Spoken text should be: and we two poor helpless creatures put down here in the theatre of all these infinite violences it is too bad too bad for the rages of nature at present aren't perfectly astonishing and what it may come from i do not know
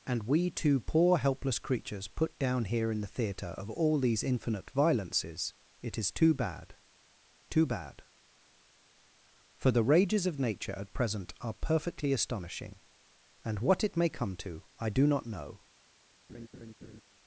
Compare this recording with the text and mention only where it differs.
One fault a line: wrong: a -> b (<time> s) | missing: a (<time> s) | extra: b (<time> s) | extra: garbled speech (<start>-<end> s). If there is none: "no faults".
wrong: aren't -> are (11.4 s)
wrong: from -> to (14.4 s)